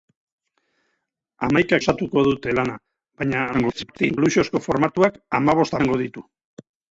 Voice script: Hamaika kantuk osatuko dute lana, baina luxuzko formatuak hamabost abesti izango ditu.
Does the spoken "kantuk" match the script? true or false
false